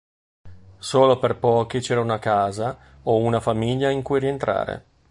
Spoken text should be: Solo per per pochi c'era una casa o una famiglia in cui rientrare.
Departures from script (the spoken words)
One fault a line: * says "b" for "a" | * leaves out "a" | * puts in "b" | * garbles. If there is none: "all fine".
* leaves out "per"